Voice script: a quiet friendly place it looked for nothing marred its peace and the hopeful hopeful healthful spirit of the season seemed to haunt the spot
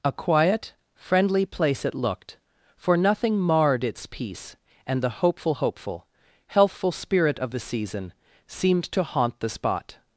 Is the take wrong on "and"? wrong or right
right